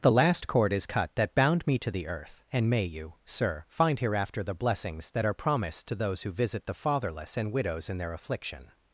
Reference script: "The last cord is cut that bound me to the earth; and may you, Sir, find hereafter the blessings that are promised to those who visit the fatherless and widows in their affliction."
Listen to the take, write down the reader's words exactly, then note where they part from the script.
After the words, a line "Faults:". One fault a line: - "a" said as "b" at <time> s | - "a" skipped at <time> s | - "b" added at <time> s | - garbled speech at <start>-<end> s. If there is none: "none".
"The last cord is cut that bound me to the earth; and may you, Sir, find hereafter the blessings that are promised to those who visit the fatherless and widows in their affliction."
Faults:
none